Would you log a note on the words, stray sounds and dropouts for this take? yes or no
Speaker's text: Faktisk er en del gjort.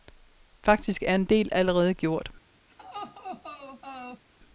yes